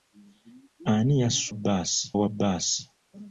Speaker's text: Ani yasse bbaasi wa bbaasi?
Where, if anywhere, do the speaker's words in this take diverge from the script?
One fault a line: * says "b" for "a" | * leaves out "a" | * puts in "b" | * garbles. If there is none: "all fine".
all fine